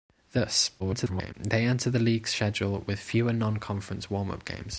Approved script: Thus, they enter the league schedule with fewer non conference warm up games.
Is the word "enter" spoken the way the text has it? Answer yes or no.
yes